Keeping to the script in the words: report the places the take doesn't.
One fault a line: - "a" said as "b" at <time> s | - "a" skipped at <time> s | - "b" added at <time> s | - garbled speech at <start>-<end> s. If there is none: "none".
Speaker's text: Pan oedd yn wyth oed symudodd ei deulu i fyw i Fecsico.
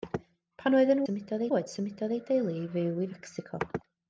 - "wyth" said as "symudodd" at 1.0 s